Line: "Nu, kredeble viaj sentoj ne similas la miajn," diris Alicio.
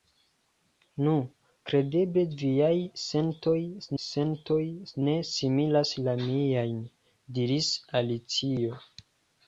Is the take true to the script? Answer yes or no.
no